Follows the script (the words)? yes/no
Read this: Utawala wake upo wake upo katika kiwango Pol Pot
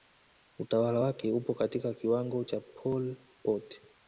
no